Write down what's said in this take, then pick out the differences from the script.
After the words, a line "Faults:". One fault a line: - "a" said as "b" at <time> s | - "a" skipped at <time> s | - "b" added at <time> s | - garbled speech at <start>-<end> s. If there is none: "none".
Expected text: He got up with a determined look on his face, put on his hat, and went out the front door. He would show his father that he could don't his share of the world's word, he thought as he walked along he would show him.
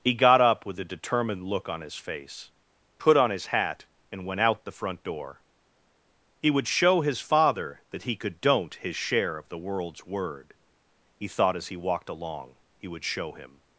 He got up with a determined look on his face, put on his hat, and went out the front door. He would show his father that he could don't his share of the world's word, he thought as he walked along he would show him.
Faults:
none